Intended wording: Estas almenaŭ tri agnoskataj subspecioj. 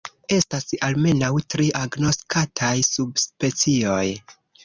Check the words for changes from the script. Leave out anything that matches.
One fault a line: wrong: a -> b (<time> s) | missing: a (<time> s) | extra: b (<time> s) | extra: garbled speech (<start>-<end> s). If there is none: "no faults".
no faults